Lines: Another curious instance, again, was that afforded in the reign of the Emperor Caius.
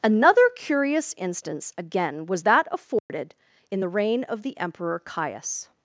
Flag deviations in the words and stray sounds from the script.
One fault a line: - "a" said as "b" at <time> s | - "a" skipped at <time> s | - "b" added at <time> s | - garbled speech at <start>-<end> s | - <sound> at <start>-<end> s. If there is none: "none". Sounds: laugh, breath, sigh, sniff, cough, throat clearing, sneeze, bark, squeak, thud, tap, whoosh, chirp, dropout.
- dropout at 3.0-3.1 s